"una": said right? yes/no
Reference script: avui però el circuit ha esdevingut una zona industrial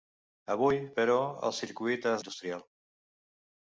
no